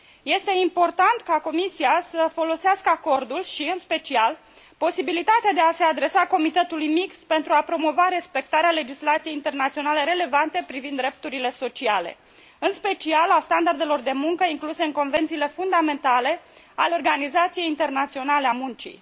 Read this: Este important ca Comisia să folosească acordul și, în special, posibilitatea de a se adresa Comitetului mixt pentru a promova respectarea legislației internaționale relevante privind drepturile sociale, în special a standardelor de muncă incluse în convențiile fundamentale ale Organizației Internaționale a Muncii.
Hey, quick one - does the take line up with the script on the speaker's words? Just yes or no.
yes